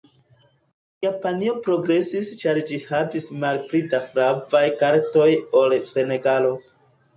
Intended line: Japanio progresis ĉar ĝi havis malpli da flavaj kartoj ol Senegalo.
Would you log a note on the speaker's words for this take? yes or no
no